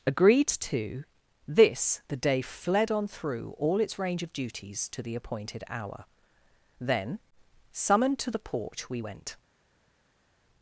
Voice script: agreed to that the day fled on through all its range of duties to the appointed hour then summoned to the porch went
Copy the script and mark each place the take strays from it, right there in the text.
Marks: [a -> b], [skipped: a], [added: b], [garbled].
agreed to [that -> this] the day fled on through all its range of duties to the appointed hour then summoned to the porch [added: we] went